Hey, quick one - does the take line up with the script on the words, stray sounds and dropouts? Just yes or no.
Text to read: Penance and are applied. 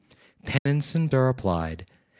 no